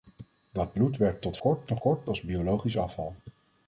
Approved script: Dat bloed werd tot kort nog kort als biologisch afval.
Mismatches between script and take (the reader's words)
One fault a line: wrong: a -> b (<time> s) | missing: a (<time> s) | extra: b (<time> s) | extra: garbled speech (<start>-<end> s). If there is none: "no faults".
no faults